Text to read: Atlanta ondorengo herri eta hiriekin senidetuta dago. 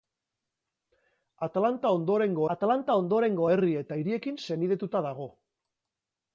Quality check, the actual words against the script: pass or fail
fail